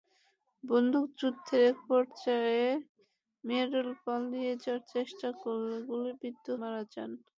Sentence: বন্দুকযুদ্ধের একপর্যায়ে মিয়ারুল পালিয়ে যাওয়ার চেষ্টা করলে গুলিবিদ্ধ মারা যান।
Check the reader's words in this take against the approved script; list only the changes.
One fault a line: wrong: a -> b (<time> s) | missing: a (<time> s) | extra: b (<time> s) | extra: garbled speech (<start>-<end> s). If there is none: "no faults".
no faults